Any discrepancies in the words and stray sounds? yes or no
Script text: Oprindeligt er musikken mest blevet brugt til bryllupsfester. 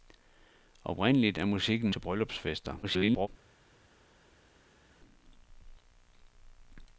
yes